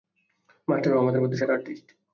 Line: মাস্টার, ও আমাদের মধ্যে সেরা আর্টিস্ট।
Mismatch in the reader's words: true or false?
false